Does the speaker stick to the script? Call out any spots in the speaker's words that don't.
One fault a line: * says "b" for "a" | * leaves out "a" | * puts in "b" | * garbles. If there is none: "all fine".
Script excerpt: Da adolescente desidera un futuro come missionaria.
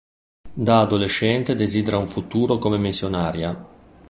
all fine